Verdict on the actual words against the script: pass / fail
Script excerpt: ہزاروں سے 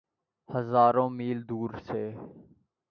fail